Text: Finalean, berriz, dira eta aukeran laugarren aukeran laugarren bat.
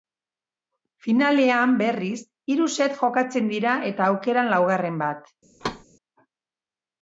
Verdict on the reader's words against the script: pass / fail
fail